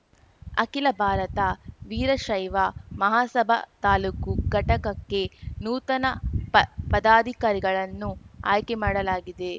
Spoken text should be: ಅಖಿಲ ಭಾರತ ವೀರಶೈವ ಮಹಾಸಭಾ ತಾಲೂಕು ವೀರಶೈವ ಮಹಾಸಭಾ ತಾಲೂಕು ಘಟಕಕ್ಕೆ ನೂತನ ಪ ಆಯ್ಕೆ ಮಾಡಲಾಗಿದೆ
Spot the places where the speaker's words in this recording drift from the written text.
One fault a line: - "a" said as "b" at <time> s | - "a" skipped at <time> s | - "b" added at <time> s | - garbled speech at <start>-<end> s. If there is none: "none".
- "ವೀರಶೈವ ಮಹಾಸಭಾ ತಾಲೂಕು" skipped at 4.3 s
- "ಪದಾಧಿಕಾರಿಗಳನ್ನು" added at 6.9 s